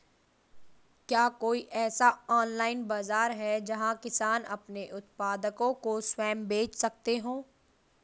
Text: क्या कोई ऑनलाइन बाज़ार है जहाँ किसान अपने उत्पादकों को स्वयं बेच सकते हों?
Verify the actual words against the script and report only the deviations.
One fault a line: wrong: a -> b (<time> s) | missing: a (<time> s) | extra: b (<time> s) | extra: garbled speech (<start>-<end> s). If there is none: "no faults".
extra: ऐसा (1.8 s)